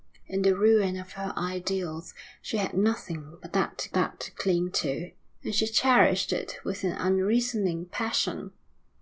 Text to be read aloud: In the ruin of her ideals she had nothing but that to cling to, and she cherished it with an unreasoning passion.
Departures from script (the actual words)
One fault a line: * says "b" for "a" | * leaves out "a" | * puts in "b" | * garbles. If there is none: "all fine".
* puts in "that to"